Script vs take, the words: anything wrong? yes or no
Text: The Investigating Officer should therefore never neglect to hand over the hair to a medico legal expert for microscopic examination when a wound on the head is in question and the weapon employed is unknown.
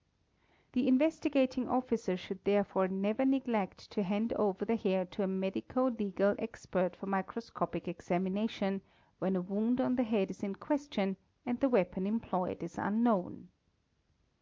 no